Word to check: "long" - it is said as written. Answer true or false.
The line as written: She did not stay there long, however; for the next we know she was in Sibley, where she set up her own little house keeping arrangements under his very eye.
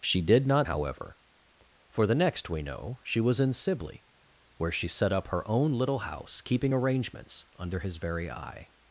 false